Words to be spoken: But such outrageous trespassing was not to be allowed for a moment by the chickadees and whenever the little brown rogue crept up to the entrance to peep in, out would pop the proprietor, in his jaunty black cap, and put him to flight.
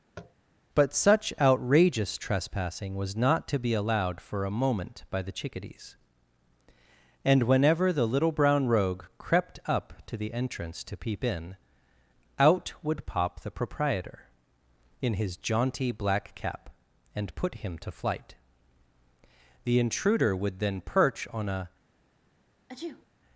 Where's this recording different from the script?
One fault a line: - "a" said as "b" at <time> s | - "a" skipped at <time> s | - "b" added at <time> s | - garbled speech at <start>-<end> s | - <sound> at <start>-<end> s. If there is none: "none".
- tap at 0.2-0.3 s
- "The intruder would then perch on a" added at 19.6 s
- sneeze at 22.7-23.1 s